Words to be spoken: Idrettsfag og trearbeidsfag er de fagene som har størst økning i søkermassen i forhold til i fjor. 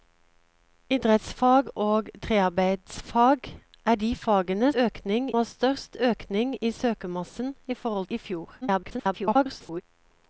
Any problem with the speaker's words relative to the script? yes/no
yes